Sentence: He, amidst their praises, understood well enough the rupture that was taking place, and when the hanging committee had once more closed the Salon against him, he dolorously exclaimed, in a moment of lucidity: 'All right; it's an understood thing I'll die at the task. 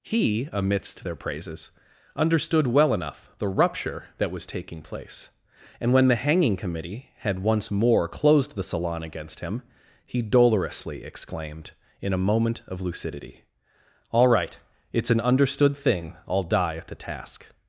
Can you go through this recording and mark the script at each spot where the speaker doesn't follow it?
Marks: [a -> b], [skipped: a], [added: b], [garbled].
He, amidst their praises, understood well enough the rupture that was taking place, and when the hanging committee had once more closed the Salon against him, he dolorously exclaimed, in a moment of lucidity: 'All right; it's an understood thing I'll die at the task.